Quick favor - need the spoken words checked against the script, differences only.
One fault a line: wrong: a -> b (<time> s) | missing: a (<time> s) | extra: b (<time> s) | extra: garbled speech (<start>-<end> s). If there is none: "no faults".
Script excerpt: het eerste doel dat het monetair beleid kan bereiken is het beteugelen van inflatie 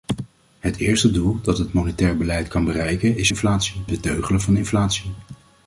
wrong: het -> inflatie (3.3 s)